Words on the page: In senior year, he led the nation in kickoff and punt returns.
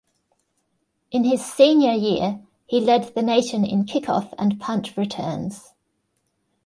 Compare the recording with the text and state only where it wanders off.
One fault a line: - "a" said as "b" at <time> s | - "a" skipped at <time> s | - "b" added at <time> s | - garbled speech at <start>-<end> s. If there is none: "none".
- "his" added at 1.2 s